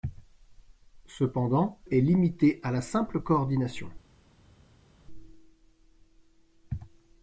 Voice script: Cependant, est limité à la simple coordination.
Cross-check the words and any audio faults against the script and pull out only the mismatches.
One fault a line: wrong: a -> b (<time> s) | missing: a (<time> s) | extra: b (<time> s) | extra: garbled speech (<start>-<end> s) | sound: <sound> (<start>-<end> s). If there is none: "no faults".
no faults